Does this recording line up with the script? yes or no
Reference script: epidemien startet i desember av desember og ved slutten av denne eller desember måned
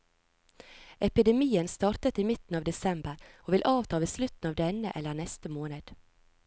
no